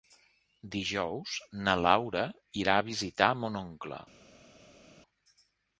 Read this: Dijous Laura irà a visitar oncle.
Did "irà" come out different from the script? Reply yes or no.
no